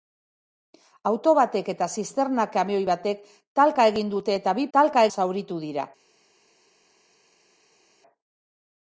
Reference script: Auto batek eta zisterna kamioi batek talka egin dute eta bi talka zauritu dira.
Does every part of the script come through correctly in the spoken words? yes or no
yes